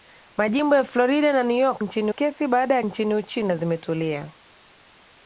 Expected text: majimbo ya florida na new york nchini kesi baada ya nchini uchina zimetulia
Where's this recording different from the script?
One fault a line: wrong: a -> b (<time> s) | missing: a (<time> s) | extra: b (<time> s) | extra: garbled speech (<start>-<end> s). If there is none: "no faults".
no faults